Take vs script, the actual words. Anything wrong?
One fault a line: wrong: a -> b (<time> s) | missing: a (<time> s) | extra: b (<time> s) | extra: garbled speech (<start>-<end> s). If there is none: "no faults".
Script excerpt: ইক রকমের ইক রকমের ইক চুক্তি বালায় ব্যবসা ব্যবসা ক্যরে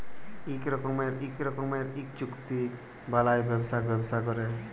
no faults